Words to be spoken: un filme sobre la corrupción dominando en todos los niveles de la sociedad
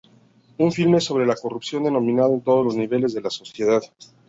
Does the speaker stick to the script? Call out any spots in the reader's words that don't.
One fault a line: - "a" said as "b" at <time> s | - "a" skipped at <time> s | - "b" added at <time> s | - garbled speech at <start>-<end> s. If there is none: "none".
none